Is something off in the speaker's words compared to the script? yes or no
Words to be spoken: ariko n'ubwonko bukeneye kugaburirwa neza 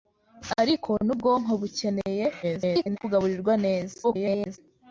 yes